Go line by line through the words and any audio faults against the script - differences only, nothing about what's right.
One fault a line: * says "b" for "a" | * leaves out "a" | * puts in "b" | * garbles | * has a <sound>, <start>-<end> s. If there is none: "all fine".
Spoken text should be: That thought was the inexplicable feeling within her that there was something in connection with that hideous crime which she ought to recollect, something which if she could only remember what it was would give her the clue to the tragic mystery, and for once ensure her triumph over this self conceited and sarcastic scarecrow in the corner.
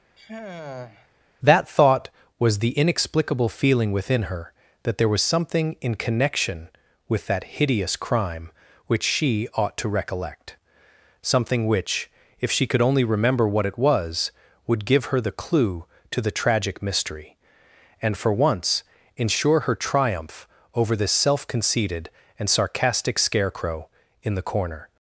* has a sigh, 0.2-1.1 s